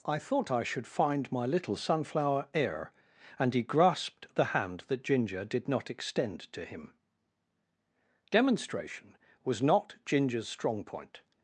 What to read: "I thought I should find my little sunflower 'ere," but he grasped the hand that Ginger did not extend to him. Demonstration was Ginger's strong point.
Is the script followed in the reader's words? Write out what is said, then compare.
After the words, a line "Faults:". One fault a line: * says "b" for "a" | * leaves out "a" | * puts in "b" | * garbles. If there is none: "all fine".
"I thought I should find my little sunflower 'ere," and he grasped the hand that Ginger did not extend to him. Demonstration was not Ginger's strong point.
Faults:
* says "and" for "but"
* puts in "not"